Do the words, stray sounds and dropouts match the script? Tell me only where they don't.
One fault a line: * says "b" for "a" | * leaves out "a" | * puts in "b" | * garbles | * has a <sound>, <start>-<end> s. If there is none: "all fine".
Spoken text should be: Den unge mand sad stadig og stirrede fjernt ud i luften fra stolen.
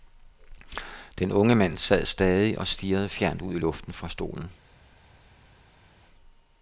all fine